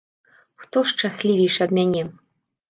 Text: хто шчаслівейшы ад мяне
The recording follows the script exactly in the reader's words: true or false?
true